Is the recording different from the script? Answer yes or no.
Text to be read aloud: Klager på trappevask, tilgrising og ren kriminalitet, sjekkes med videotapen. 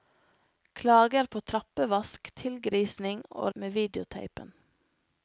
yes